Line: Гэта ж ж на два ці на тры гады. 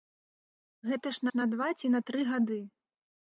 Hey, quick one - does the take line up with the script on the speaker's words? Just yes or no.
yes